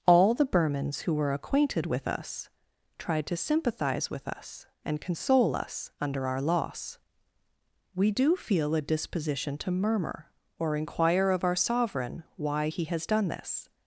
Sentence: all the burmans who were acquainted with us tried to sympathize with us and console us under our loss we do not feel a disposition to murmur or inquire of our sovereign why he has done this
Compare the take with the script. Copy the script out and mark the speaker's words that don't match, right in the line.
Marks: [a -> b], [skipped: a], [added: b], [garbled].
all the burmans who were acquainted with us tried to sympathize with us and console us under our loss we do [skipped: not] feel a disposition to murmur or inquire of our sovereign why he has done this